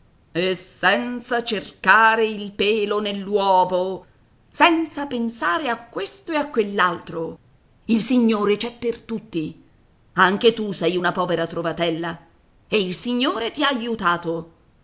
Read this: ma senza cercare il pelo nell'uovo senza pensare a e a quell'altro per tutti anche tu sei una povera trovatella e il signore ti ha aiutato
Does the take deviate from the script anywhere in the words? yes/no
yes